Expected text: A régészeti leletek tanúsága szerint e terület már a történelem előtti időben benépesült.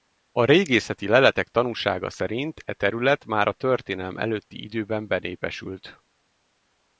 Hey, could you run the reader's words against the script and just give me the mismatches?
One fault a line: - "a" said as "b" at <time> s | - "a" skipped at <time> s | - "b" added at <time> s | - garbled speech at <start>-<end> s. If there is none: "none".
none